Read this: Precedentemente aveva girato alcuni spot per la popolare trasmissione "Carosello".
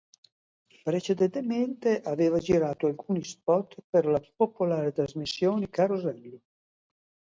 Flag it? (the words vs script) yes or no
no